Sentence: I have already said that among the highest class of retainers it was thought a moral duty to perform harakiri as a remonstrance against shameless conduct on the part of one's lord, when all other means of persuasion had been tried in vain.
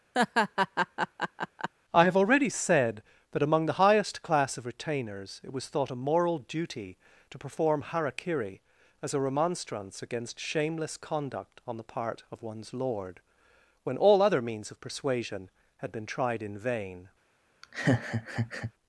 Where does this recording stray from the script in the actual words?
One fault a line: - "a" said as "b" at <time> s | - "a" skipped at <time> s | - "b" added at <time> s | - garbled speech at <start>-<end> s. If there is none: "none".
none